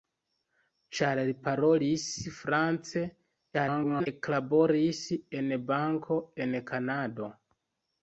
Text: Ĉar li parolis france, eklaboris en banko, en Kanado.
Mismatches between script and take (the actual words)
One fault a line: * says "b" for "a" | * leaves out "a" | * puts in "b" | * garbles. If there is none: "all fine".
* garbles